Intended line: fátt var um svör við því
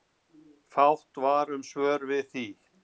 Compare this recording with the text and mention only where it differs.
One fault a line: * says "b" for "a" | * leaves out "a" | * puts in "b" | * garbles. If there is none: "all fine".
all fine